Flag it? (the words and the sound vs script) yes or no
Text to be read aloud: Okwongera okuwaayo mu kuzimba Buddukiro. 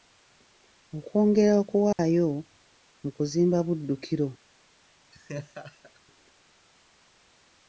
yes